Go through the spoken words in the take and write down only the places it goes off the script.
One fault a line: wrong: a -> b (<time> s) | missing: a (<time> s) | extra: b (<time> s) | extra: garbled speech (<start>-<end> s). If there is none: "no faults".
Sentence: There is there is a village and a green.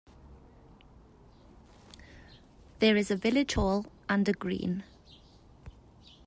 missing: there is (3.1 s)
extra: hall (3.5 s)